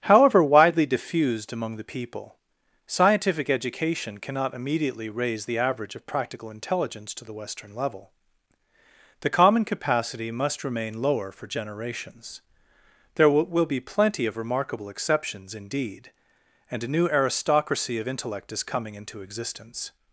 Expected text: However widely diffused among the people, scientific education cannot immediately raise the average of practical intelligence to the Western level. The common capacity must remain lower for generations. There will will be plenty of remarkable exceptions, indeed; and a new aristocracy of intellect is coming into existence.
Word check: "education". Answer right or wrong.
right